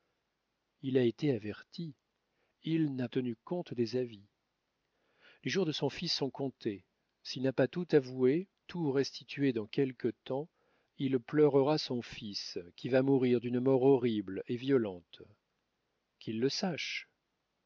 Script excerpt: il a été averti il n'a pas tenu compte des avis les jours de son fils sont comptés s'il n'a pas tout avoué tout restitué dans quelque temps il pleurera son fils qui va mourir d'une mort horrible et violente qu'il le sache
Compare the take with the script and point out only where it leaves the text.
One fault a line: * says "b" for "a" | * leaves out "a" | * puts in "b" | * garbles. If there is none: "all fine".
* leaves out "pas"